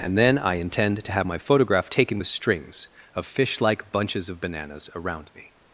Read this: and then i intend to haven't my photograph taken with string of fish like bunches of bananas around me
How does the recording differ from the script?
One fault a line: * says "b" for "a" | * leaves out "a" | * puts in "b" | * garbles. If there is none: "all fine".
* says "have" for "haven't"
* says "strings" for "string"